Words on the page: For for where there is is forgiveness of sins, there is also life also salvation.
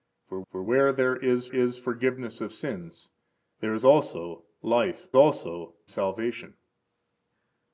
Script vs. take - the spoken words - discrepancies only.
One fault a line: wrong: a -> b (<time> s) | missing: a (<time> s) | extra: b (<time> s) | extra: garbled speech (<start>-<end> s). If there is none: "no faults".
no faults